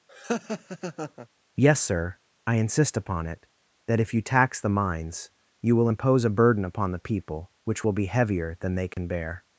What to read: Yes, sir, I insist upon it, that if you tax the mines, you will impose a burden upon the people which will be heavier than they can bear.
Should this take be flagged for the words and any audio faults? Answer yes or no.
yes